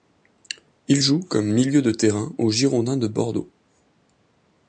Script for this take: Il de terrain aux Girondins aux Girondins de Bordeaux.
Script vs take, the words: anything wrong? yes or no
yes